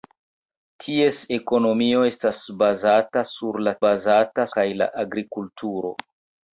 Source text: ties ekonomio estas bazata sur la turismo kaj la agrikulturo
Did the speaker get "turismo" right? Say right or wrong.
wrong